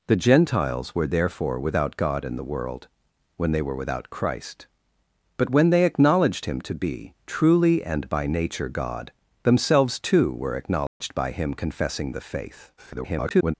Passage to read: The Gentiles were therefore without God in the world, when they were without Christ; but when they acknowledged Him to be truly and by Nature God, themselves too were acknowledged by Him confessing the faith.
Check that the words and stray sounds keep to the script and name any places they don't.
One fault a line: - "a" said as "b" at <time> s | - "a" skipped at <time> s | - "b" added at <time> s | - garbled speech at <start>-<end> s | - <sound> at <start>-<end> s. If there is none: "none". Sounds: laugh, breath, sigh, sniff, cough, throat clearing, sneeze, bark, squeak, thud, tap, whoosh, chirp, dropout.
- dropout at 10.9-11.0 s
- garbled speech at 12.8-13.5 s